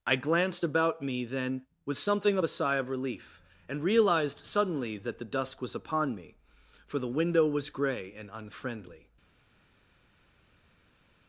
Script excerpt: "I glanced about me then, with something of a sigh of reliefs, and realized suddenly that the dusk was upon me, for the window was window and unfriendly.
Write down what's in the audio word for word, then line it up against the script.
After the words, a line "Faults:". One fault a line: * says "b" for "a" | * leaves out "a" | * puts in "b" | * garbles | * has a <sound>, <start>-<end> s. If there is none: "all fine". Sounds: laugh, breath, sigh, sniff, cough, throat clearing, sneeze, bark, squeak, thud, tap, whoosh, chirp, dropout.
"I glanced about me then, with something of a sigh of relief, and realized suddenly that the dusk was upon me, for the window was grey and unfriendly.
Faults:
* says "relief" for "reliefs"
* says "grey" for "window"